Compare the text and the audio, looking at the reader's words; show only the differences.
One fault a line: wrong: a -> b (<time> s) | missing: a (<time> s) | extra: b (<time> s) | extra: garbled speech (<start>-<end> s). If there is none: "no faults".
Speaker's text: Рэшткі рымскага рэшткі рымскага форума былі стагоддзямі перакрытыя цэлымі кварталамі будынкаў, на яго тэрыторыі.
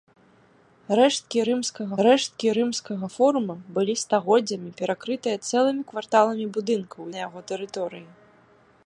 no faults